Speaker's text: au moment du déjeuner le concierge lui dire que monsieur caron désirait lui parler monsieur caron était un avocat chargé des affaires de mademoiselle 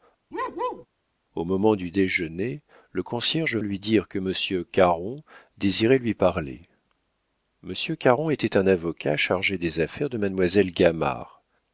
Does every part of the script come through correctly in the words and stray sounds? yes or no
no